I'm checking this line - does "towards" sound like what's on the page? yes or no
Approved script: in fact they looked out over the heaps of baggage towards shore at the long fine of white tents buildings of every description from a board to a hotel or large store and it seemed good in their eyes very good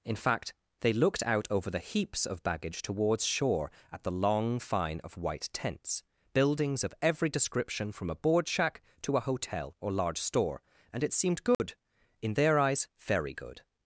yes